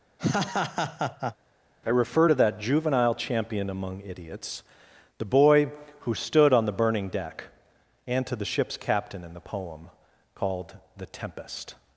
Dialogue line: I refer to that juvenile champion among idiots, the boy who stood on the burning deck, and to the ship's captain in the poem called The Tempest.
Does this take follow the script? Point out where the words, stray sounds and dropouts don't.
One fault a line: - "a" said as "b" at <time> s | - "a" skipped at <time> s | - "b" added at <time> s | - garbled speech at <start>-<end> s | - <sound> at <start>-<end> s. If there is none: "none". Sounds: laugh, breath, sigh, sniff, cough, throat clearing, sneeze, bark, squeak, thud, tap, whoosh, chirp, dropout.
- laugh at 0.2-1.4 s